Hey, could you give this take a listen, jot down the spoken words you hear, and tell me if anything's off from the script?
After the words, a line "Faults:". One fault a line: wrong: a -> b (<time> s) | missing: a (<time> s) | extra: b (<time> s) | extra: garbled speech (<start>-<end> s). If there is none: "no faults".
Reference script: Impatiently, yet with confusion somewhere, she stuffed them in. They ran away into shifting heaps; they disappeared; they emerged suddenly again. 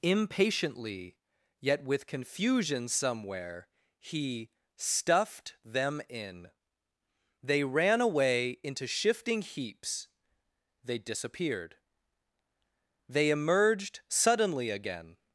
Impatiently, yet with confusion somewhere, he stuffed them in. They ran away into shifting heaps; they disappeared; they emerged suddenly again.
Faults:
wrong: she -> he (4.0 s)